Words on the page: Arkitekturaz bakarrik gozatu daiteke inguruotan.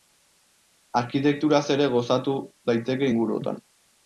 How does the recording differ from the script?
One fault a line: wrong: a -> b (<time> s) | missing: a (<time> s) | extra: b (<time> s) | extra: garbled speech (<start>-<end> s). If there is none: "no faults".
wrong: bakarrik -> ere (1.8 s)